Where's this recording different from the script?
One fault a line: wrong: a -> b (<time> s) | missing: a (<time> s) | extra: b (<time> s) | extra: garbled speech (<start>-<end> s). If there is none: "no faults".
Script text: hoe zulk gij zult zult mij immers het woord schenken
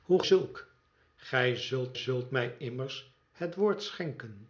no faults